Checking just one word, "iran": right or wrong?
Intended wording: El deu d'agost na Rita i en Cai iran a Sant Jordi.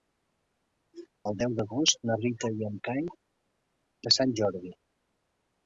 wrong